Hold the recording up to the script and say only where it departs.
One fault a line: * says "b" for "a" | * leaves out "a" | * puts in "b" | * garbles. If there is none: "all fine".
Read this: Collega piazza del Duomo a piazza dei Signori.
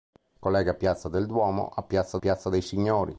* puts in "piazza"